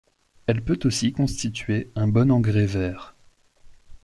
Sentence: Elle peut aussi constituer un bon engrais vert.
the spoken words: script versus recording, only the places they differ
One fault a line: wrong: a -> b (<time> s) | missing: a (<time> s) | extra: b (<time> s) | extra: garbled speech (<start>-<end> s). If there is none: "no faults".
no faults